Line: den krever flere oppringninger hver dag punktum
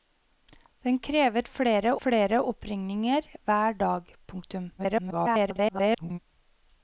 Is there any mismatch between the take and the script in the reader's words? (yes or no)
yes